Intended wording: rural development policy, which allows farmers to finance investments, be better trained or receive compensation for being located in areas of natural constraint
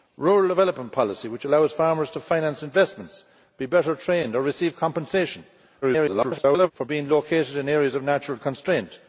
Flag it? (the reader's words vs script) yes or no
yes